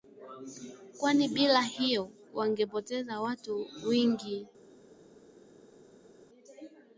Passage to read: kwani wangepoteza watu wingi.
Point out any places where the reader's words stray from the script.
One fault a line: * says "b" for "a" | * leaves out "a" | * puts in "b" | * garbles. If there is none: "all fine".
* puts in "bila hiyo"